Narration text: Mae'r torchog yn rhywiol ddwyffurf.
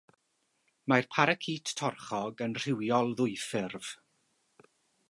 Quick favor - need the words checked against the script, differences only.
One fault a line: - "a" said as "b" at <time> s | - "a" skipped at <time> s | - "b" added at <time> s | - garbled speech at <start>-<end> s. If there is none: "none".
- "paracît" added at 1.2 s